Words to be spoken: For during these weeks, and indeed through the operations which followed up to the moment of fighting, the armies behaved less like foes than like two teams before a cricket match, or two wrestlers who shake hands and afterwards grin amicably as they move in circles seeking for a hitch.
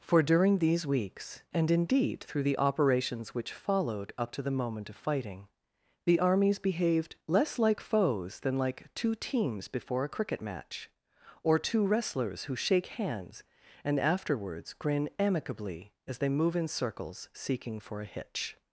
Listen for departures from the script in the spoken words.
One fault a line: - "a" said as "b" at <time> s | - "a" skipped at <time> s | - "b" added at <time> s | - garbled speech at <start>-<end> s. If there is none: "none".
none